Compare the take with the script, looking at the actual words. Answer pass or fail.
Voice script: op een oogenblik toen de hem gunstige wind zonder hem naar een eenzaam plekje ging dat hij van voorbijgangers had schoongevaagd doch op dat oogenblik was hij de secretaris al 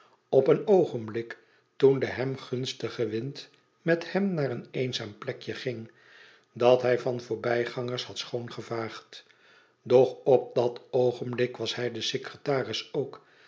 fail